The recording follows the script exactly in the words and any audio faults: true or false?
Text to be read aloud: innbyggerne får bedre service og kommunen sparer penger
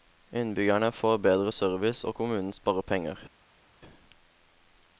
true